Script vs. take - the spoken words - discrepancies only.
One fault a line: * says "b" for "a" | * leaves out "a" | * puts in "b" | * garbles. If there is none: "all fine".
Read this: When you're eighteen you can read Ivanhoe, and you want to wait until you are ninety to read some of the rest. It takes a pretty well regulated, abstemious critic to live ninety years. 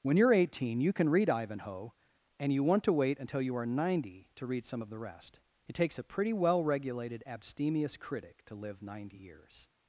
all fine